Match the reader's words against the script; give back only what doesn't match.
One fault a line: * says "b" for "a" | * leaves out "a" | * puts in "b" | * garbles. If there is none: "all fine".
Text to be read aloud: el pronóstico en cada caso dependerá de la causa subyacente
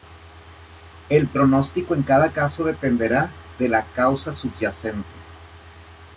all fine